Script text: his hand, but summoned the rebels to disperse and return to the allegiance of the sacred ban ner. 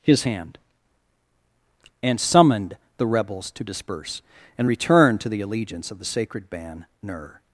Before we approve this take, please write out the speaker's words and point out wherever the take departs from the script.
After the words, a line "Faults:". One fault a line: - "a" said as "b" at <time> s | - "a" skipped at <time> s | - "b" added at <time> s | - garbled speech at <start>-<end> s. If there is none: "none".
his hand, and summoned the rebels to disperse and return to the allegiance of the sacred ban ner.
Faults:
- "but" said as "and" at 2.0 s